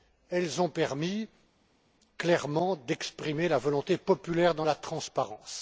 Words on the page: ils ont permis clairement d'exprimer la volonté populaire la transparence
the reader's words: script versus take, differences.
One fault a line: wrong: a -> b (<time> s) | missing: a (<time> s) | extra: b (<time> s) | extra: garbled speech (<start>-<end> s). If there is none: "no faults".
wrong: ils -> elles (0.3 s)
extra: dans (4.5 s)